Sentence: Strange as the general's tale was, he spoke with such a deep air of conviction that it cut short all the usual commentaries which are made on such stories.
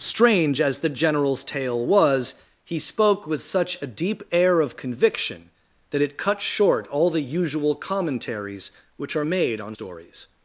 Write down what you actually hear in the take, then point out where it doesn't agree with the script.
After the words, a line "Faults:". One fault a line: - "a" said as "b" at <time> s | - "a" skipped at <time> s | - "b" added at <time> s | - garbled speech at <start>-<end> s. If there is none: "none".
Strange as the general's tale was, he spoke with such a deep air of conviction that it cut short all the usual commentaries which are made on stories.
Faults:
- "such" skipped at 9.7 s